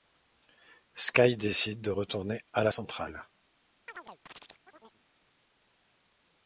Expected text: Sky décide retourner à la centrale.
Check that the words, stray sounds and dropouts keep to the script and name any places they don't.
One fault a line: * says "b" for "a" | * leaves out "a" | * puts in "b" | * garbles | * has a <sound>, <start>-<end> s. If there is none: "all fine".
* puts in "de"
* has a chirp, 3.9-5.0 s